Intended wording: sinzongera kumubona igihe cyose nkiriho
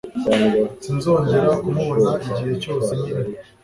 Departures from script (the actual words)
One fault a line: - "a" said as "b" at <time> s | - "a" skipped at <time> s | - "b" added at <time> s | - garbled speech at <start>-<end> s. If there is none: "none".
none